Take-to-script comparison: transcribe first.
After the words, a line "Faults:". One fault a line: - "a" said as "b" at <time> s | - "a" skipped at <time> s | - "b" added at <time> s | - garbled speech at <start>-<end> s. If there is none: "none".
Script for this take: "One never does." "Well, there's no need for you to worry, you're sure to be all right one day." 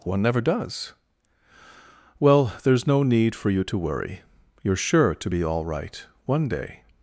"One never does." "Well, there's no need for you to worry, you're sure to be all right one day."
Faults:
none